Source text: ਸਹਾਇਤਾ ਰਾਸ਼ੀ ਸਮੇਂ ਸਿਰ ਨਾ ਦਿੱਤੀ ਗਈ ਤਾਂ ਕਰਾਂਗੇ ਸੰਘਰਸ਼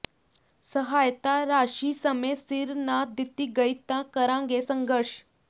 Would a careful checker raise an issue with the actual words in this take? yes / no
no